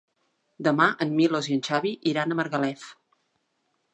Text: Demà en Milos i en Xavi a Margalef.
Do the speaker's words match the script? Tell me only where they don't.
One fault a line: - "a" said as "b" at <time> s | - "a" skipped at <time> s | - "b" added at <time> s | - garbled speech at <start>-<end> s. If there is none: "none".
- "iran" added at 2.1 s